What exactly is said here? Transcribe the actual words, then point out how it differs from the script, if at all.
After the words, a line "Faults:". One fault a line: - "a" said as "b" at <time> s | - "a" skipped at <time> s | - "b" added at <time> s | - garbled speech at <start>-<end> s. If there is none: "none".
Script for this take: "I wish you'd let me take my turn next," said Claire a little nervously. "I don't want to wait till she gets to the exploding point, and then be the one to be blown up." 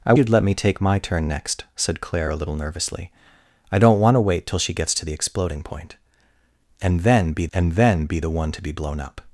"I you'd let me take my turn next," said Claire a little nervously. "I don't want to wait till she gets to the exploding point, and then be and then be the one to be blown up."
Faults:
- "wish" skipped at 0.1 s
- "and then be" added at 7.5 s